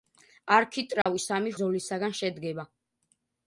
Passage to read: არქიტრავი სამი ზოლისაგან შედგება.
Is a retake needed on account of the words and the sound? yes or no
yes